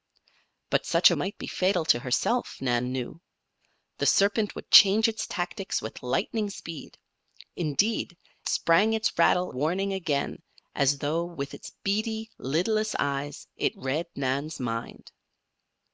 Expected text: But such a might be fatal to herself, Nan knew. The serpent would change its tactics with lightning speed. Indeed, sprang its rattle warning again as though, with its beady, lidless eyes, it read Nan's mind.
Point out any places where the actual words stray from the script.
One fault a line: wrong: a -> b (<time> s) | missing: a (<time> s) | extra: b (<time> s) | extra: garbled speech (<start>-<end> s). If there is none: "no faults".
no faults